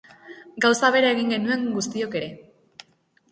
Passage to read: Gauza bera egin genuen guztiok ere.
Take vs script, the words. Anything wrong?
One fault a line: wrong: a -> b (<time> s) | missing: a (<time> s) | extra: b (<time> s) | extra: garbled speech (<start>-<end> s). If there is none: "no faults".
no faults